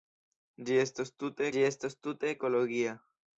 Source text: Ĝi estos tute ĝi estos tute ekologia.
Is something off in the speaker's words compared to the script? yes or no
no